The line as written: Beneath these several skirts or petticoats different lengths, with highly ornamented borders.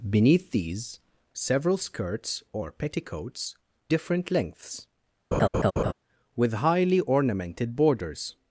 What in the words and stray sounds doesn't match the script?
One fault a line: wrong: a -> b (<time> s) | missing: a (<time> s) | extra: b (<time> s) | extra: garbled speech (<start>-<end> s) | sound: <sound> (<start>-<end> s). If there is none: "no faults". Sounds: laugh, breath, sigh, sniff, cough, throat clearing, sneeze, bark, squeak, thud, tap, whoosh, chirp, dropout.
sound: laugh (5.3-5.9 s)